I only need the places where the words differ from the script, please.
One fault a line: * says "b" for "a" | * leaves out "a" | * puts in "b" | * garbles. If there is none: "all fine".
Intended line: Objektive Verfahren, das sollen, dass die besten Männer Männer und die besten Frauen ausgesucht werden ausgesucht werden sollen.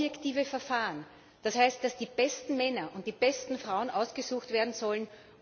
* says "heißt" for "sollen"
* leaves out "Männer"
* leaves out "ausgesucht werden"